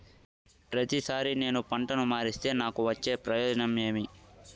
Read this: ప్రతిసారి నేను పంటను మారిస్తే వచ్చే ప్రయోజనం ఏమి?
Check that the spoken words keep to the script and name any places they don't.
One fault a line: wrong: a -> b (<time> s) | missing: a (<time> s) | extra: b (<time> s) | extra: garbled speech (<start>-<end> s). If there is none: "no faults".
extra: నాకు (2.6 s)